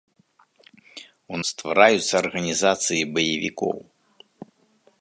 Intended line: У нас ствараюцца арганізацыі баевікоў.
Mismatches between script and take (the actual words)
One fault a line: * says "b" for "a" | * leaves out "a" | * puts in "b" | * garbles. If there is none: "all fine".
* leaves out "нас"